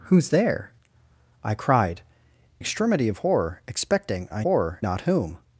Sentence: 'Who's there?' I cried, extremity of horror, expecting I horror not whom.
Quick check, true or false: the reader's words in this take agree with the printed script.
true